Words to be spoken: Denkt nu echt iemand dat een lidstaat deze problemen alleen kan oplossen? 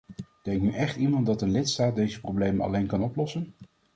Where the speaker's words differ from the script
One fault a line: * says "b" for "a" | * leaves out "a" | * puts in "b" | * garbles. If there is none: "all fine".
all fine